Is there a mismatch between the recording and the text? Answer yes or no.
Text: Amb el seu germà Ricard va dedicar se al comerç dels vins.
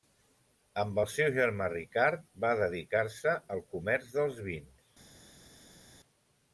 no